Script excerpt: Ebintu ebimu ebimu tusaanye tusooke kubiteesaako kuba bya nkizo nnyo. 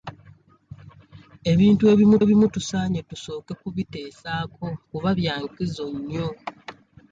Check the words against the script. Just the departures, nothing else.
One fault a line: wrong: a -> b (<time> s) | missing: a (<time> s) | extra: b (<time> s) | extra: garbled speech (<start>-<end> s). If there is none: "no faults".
no faults